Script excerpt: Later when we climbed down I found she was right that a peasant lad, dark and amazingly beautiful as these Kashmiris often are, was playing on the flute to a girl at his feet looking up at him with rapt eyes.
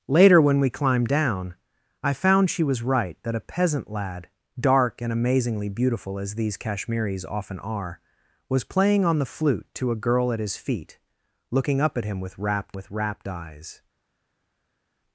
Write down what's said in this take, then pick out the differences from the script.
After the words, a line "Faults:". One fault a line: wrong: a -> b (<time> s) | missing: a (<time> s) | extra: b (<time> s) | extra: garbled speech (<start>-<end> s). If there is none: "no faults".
Later when we climbed down I found she was right that a peasant lad, dark and amazingly beautiful as these Kashmiris often are, was playing on the flute to a girl at his feet looking up at him with rapt with rapt eyes.
Faults:
extra: with rapt (12.7 s)